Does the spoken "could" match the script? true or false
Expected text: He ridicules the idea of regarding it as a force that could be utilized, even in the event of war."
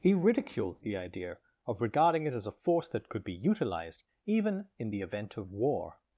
true